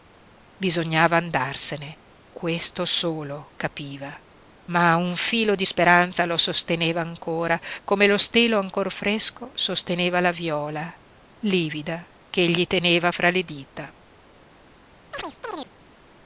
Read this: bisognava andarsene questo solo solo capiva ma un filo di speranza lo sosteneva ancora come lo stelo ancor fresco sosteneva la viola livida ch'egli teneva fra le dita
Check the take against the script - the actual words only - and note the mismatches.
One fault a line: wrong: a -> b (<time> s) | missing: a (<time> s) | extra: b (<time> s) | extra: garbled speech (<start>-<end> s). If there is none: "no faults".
missing: solo (3.5 s)